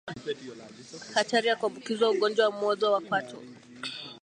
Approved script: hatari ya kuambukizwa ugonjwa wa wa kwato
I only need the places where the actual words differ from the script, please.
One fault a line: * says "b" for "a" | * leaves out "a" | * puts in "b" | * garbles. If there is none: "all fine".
* puts in "mwozo"